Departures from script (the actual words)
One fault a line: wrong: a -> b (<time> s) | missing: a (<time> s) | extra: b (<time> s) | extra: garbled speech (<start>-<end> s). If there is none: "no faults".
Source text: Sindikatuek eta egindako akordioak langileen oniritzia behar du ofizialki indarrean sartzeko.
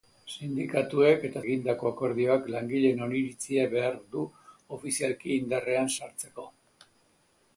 no faults